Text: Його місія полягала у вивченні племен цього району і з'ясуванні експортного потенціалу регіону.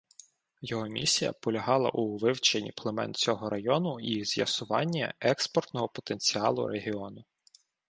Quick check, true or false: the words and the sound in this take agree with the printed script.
true